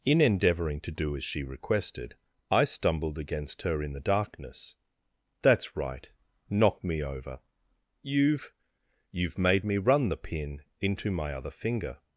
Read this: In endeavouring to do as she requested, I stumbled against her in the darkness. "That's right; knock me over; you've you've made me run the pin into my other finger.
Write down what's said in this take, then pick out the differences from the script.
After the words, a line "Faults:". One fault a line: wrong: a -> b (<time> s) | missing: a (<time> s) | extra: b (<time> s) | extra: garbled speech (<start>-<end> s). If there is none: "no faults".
In endeavouring to do as she requested, I stumbled against her in the darkness. "That's right; knock me over; you've you've made me run the pin into my other finger.
Faults:
no faults